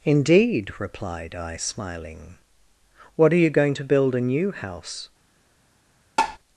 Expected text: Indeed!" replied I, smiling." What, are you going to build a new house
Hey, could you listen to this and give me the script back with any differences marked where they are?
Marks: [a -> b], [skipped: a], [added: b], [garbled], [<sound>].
Indeed!" replied I, smiling." What, are you going to build a new house [tap]